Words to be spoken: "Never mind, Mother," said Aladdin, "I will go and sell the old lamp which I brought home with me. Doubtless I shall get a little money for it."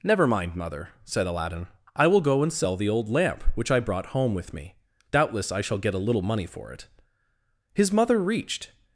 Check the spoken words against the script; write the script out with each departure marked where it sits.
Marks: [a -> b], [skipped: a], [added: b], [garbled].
"Never mind, Mother," said Aladdin, "I will go and sell the old lamp which I brought home with me. Doubtless I shall get a little money for it." [added: His Mother reached]